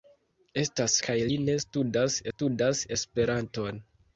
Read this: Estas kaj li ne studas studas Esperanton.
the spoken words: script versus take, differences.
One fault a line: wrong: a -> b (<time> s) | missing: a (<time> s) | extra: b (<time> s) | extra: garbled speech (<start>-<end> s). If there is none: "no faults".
no faults